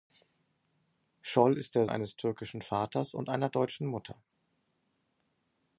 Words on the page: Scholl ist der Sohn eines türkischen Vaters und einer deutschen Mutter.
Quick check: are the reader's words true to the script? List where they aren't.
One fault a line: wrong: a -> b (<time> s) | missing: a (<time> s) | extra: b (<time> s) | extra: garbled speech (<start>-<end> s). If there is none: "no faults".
missing: Sohn (1.9 s)